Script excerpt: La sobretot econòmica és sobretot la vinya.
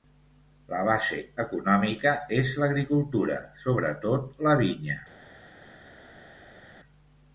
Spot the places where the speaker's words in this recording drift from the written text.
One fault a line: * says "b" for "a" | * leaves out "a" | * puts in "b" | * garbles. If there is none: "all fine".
* says "base" for "sobretot"
* puts in "l'agricultura"